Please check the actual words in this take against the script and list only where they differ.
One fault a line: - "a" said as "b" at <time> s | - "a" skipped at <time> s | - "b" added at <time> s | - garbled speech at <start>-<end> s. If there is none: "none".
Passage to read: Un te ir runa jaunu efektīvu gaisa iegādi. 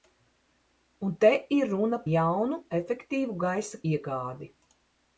none